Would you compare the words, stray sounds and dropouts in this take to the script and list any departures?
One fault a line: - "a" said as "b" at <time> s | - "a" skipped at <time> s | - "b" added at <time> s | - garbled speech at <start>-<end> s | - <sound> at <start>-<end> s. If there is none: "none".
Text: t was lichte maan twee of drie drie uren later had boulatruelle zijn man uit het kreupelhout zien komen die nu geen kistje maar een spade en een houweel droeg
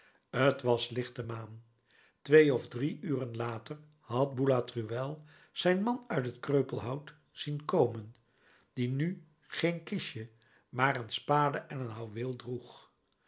- "drie" skipped at 3.0 s